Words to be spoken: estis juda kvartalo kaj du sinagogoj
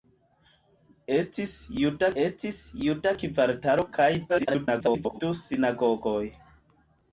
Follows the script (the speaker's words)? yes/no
no